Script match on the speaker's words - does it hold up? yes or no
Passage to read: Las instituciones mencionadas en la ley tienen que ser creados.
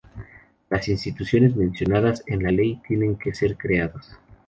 yes